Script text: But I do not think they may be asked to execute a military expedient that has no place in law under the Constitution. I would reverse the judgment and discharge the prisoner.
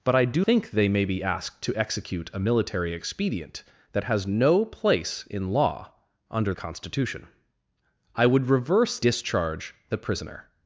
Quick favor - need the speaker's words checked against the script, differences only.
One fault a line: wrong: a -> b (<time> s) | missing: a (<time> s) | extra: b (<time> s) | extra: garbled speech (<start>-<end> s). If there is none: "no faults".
missing: not (0.5 s)
missing: the (6.5 s)
missing: the judgment and (9.0 s)